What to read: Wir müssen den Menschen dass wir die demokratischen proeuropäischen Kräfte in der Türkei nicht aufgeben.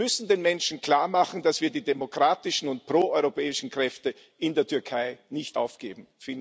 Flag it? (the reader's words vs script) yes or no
yes